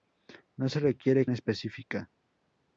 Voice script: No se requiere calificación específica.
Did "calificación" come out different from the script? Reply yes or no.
yes